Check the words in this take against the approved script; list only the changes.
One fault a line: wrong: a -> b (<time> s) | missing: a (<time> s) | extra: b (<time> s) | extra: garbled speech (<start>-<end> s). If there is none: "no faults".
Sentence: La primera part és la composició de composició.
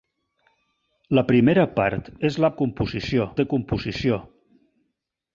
no faults